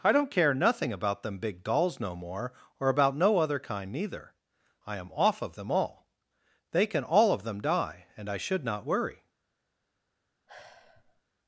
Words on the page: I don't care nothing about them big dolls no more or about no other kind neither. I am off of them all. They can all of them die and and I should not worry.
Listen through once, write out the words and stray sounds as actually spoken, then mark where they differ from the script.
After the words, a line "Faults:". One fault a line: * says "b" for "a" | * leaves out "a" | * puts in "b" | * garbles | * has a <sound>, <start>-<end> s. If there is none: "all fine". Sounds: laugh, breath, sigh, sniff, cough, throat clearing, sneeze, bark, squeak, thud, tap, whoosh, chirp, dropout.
I don't care nothing about them big dolls no more or about no other kind neither. I am off of them all. They can all of them die and I should not worry.
Faults:
* leaves out "and"
* has a sigh, 10.5-11.2 s